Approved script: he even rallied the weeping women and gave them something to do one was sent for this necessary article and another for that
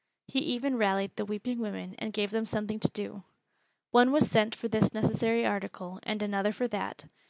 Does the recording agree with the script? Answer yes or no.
yes